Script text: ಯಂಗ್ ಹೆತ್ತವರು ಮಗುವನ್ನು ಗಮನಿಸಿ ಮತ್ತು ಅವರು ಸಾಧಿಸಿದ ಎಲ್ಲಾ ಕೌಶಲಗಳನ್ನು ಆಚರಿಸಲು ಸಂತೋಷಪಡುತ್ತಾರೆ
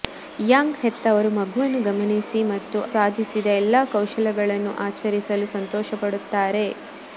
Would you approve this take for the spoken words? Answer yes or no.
no